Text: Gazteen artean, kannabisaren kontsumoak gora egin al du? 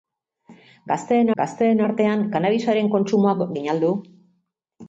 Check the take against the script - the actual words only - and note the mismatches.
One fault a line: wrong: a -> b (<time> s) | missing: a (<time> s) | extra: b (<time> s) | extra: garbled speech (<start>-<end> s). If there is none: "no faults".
extra: gazteen (1.4 s)
missing: gora (3.6 s)